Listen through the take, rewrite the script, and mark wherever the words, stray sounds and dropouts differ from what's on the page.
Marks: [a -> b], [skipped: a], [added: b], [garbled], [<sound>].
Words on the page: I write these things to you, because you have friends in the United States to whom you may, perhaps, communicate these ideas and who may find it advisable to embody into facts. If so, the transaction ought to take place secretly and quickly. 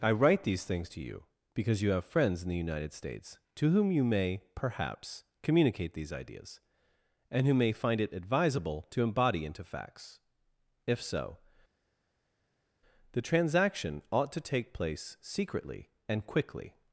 I write these things to you, because you have friends in the United States to whom you may, perhaps, communicate these ideas and who may find it advisable to embody into facts. If so, the transaction ought to take place secretly and quickly.